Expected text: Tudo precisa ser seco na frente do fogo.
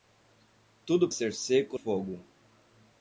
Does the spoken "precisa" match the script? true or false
false